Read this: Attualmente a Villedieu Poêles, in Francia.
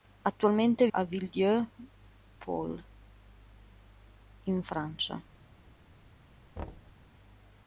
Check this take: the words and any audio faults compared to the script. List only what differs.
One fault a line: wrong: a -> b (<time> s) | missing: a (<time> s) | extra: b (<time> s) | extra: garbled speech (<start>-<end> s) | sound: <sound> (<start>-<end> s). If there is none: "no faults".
sound: thud (6.6-7.0 s)